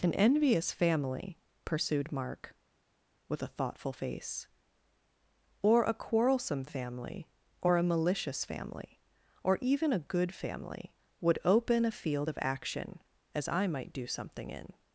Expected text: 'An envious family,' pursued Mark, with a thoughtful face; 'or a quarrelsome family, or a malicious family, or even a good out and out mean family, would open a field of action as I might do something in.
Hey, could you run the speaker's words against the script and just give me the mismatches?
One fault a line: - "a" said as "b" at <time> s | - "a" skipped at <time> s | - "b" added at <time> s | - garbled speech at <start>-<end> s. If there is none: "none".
- "out and out mean" skipped at 10.3 s